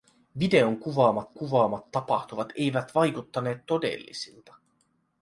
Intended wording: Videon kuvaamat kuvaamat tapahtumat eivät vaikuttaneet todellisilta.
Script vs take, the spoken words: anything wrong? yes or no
no